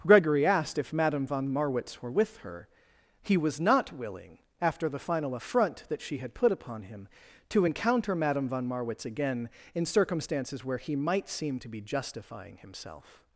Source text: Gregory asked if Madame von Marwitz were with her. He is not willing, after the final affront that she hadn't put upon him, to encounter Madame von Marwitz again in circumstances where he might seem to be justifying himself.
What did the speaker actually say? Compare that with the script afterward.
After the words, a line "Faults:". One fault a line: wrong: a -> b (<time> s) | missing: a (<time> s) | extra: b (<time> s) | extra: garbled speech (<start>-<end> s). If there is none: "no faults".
Gregory asked if Madame von Marwitz were with her. He was not willing, after the final affront that she had put upon him, to encounter Madame von Marwitz again in circumstances where he might seem to be justifying himself.
Faults:
wrong: is -> was (3.4 s)
wrong: hadn't -> had (6.2 s)